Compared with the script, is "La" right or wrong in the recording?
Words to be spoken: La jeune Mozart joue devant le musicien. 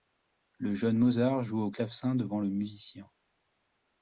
wrong